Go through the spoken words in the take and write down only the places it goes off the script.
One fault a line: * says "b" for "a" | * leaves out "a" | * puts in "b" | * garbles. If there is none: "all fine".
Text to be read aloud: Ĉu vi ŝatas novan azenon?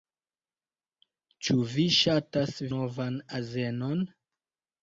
all fine